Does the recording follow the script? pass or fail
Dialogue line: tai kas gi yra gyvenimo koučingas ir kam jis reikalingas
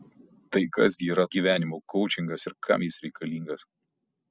pass